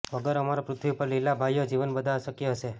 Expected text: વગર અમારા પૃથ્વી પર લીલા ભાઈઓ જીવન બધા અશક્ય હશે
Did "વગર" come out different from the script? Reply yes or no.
no